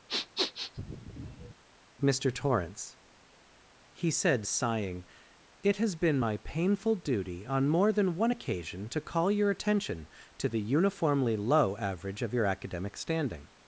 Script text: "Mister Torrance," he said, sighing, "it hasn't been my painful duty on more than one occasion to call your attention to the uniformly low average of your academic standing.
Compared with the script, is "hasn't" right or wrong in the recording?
wrong